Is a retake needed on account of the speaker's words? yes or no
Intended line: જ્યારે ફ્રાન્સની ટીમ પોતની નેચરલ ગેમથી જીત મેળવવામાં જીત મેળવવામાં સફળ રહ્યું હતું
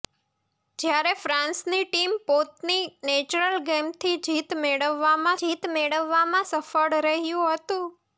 no